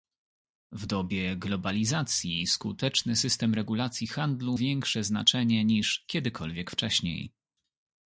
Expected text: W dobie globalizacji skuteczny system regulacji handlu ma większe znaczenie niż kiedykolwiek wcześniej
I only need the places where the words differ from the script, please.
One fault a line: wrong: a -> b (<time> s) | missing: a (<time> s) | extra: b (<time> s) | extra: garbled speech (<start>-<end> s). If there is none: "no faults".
missing: ma (4.6 s)